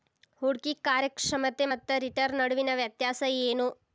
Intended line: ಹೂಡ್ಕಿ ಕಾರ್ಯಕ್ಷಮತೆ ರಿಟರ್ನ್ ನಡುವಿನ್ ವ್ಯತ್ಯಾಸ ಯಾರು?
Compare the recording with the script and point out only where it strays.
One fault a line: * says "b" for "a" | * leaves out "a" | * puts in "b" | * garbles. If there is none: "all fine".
* puts in "ಮತ್ತ"
* says "ಏನು" for "ಯಾರು"